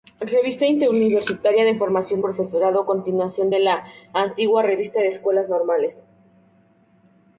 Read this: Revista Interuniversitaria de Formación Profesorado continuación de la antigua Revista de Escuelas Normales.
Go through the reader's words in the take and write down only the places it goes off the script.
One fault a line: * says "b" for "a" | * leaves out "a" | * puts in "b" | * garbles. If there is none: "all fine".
all fine